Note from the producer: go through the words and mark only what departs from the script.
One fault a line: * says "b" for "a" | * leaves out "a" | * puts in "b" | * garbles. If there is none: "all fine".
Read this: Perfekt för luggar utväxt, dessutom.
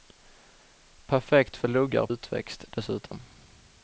all fine